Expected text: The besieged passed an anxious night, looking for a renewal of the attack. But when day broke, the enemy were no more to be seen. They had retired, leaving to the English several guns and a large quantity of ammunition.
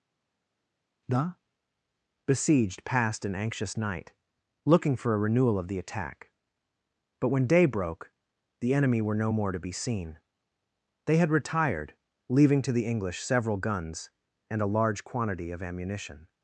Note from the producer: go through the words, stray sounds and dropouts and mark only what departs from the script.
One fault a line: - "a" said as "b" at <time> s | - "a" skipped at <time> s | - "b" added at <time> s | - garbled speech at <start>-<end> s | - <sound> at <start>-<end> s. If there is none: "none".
none